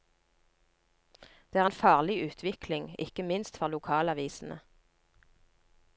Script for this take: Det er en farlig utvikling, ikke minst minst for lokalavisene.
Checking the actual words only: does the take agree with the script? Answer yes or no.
no